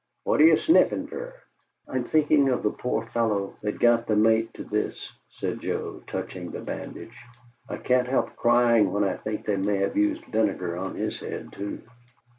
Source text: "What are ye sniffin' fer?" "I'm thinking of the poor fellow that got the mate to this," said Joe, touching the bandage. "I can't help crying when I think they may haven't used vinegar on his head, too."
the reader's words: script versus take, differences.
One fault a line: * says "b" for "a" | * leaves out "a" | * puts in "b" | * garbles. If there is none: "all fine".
* says "have" for "haven't"